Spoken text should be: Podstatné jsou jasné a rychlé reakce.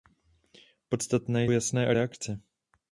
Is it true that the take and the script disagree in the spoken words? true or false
true